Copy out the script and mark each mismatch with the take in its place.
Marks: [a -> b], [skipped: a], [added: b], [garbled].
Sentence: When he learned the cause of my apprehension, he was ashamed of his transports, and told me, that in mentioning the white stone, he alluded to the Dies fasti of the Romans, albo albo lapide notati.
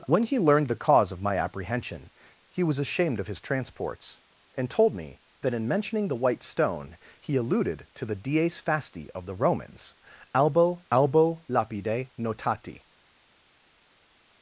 When he learned the cause of my apprehension, he was ashamed of his transports, and told me, that in mentioning the white stone, he alluded to the Dies fasti of the Romans, albo albo lapide notati.